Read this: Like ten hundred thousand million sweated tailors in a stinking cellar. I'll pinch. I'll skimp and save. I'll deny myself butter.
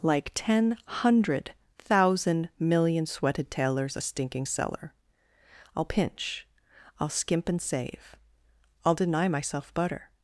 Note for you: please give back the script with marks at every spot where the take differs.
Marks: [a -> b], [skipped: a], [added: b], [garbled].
Like ten hundred thousand million sweated tailors [skipped: in] a stinking cellar. I'll pinch. I'll skimp and save. I'll deny myself butter.